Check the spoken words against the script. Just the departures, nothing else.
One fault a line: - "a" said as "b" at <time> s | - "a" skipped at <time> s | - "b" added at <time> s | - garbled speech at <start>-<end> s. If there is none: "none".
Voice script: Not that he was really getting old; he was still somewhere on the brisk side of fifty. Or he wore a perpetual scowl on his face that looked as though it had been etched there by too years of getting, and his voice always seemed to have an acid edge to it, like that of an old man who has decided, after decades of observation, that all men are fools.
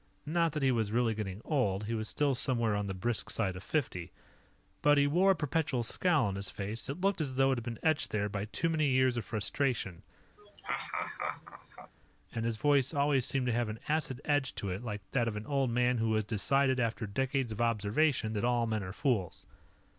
- "Or" said as "But" at 4.8 s
- "many" added at 8.7 s
- "getting" said as "frustration" at 9.3 s